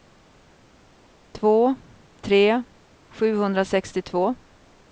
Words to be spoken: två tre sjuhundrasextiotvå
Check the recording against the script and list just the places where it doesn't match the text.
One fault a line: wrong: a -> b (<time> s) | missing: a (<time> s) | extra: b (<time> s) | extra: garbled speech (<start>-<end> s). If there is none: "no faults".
no faults